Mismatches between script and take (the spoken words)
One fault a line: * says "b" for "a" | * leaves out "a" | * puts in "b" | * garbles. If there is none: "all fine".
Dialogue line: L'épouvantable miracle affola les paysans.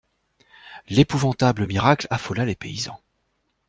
all fine